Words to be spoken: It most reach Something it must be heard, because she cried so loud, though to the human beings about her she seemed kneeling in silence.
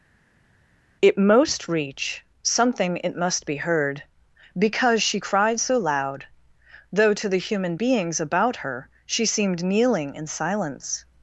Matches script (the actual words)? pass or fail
pass